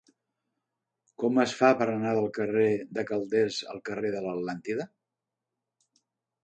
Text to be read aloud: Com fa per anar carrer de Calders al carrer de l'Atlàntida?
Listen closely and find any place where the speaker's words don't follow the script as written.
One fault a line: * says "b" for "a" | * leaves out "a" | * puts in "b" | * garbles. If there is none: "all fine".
* puts in "es"
* puts in "del"